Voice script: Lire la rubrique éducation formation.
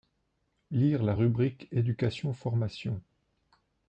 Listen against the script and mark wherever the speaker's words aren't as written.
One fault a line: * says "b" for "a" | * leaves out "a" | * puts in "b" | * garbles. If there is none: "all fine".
all fine